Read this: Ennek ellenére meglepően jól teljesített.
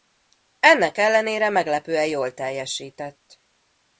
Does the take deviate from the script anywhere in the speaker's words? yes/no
no